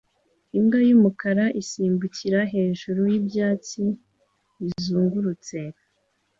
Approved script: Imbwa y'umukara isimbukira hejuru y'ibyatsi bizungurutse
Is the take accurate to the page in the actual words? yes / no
yes